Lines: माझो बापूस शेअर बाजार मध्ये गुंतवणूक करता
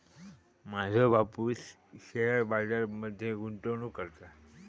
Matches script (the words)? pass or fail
pass